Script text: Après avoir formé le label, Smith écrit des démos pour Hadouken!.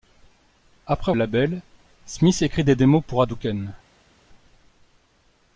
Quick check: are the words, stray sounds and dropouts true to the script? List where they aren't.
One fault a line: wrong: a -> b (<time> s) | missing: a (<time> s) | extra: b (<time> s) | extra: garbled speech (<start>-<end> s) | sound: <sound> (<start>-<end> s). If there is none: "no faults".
missing: avoir formé le (1.1 s)